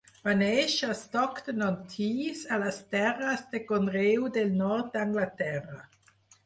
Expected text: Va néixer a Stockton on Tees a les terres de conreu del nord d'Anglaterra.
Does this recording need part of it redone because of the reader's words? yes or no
no